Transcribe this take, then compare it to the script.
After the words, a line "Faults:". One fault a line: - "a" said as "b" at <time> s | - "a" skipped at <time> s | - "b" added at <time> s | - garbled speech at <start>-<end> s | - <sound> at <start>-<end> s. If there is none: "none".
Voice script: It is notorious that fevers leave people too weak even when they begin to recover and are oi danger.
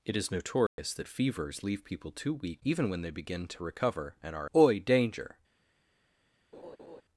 It is notorious that fevers leave people too weak even when they begin to recover and are oi danger.
Faults:
- dropout at 0.7-0.8 s
- laugh at 6.5-7.0 s